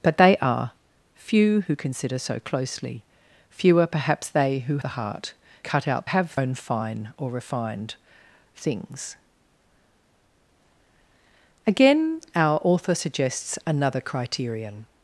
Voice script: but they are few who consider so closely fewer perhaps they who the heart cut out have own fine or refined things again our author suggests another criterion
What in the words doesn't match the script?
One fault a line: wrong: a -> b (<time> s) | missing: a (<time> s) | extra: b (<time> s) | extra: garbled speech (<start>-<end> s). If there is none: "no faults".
no faults